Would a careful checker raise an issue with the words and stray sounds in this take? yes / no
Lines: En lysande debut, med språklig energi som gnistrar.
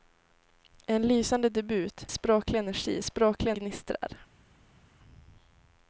yes